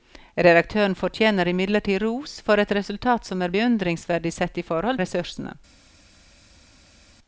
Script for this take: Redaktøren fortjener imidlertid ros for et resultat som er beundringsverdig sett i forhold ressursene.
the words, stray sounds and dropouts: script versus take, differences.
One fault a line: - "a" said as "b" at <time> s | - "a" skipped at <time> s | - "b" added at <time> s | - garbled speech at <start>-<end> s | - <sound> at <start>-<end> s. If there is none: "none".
none